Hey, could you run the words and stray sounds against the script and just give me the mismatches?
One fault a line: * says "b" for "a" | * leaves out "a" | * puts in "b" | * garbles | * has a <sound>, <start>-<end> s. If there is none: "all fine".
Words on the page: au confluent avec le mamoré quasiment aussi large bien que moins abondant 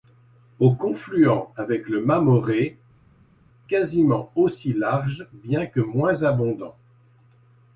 all fine